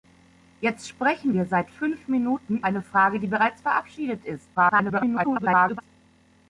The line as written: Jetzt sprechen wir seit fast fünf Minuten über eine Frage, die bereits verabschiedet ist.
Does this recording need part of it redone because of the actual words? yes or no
yes